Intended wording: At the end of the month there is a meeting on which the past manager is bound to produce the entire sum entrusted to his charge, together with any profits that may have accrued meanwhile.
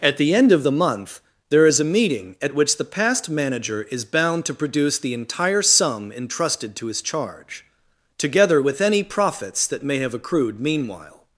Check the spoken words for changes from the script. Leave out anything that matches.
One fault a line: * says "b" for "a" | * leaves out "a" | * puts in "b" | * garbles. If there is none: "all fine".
* says "at" for "on"